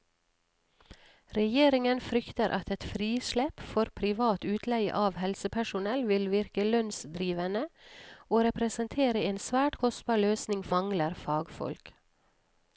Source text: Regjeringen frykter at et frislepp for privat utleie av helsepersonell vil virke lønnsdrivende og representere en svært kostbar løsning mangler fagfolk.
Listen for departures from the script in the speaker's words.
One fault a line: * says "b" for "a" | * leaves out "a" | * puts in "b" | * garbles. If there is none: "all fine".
all fine